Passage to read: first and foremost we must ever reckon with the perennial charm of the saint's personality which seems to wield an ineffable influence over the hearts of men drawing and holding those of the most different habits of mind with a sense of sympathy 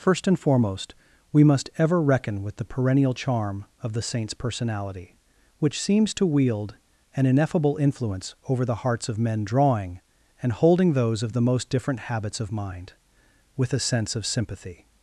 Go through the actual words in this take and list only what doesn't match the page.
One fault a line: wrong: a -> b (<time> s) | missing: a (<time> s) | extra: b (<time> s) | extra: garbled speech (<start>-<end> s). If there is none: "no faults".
no faults